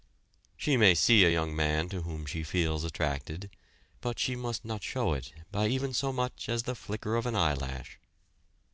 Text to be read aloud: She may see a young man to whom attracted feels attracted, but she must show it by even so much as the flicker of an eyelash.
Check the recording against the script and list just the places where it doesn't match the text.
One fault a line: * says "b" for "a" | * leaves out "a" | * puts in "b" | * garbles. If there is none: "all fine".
* says "she" for "attracted"
* puts in "not"